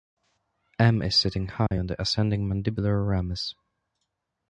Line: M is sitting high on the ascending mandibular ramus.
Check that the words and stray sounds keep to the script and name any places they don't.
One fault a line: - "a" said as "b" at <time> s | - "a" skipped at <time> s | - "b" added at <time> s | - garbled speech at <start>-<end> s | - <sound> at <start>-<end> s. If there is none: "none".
- dropout at 1.7-1.7 s